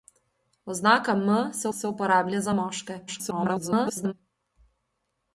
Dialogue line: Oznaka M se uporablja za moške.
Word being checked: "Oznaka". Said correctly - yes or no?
yes